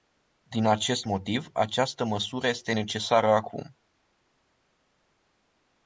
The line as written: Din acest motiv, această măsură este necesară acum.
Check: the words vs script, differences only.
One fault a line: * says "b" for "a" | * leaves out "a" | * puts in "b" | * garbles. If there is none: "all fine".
all fine